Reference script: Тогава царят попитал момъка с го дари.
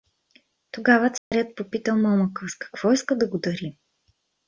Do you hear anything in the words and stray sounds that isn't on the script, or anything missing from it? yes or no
yes